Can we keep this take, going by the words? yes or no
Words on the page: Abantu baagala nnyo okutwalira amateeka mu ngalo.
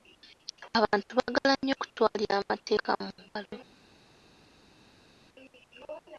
yes